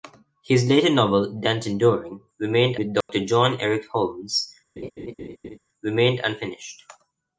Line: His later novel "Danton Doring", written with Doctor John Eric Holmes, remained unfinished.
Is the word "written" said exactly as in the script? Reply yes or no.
no